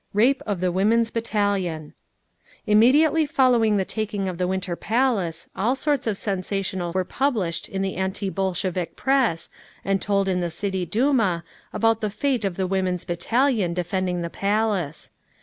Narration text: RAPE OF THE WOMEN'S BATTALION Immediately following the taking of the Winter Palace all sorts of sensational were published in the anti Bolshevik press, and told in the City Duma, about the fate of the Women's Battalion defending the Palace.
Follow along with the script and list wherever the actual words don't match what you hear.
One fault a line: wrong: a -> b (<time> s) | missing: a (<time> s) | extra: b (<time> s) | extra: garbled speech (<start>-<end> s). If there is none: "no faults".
no faults